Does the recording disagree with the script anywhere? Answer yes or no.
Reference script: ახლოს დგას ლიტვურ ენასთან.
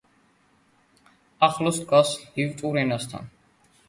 no